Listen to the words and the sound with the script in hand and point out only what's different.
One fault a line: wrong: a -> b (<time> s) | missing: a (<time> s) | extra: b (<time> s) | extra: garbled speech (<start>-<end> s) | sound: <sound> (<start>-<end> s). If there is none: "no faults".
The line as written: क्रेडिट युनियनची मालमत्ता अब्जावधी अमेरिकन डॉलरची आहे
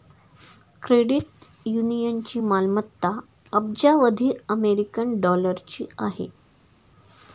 no faults